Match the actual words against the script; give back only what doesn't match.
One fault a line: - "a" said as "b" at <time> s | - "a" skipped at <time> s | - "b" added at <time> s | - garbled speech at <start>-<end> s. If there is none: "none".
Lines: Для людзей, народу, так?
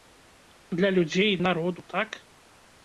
none